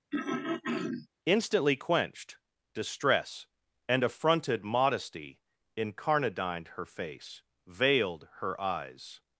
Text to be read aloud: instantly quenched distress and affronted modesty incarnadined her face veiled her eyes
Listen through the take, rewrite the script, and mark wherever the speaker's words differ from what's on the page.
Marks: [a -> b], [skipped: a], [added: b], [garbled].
instantly quenched distress and affronted modesty incarnadined her face veiled her eyes